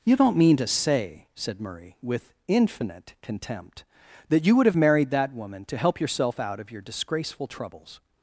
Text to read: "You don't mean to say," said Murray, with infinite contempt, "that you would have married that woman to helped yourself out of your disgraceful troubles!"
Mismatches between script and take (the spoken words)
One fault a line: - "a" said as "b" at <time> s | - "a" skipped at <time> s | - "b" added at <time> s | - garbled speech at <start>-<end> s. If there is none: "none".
- "helped" said as "help" at 5.8 s